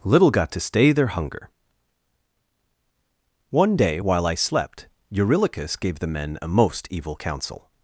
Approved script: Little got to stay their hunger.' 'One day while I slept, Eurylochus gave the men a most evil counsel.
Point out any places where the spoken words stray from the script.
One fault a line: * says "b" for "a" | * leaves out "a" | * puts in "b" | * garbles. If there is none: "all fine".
all fine